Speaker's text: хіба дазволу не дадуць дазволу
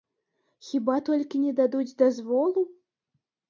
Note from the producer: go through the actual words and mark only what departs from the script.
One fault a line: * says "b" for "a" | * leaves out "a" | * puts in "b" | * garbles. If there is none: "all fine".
* says "толькі" for "дазволу"